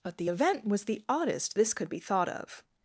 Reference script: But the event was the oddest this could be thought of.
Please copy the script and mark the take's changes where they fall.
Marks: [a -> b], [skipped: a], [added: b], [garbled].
But the event was the oddest this could be thought of.